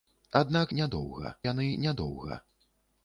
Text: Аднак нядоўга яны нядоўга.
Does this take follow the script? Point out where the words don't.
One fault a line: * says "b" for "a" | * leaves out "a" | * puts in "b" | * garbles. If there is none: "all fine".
all fine